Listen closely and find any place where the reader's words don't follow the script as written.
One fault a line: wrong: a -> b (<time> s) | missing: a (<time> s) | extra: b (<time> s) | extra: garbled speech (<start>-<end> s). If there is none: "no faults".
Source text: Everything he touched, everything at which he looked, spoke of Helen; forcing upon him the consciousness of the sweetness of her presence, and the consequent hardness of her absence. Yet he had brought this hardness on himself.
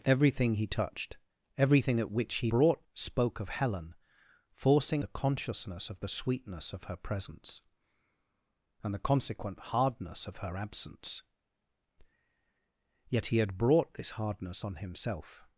wrong: looked -> brought (2.5 s)
missing: upon him (5.0 s)